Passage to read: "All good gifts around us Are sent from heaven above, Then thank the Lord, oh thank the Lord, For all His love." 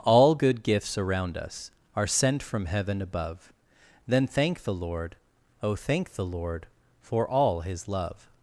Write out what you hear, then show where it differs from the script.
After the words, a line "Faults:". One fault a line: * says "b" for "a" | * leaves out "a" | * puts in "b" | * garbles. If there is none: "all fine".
"All good gifts around us Are sent from heaven above, Then thank the Lord, oh thank the Lord, For all His love."
Faults:
all fine